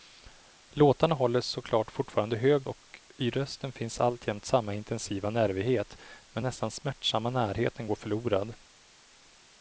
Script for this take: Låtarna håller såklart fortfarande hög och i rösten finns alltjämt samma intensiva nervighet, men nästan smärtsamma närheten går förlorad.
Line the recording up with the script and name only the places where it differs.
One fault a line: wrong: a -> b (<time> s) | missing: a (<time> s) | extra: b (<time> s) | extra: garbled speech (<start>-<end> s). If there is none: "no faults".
no faults